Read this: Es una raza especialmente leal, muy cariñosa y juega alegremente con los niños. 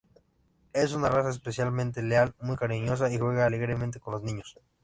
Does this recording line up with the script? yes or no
yes